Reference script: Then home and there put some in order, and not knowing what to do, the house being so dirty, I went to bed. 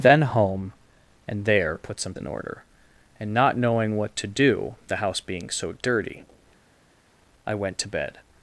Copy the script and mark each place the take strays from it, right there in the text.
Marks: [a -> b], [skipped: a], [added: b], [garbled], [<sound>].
Then home and there put some in order, and not knowing what to do, the house being so dirty, I went to bed.